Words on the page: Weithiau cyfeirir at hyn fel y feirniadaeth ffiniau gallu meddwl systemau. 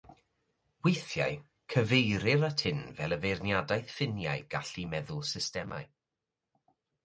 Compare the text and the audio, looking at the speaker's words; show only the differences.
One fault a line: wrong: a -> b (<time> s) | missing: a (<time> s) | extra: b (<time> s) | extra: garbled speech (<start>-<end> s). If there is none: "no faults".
no faults